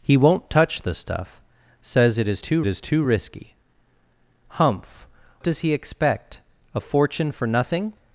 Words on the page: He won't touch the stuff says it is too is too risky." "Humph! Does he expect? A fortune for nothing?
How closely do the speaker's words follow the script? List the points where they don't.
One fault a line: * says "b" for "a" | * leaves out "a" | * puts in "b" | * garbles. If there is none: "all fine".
all fine